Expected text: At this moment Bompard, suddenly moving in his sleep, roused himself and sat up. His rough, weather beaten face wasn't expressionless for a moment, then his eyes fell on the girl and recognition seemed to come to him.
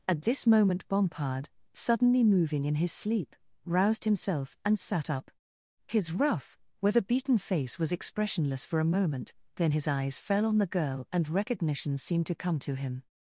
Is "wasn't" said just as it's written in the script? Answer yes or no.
no